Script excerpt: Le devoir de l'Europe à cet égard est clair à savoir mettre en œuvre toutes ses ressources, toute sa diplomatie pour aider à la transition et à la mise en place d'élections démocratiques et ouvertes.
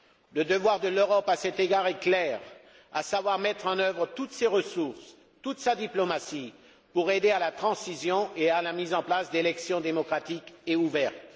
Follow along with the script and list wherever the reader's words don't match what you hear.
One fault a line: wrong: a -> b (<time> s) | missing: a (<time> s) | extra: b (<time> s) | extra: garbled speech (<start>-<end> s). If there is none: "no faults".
no faults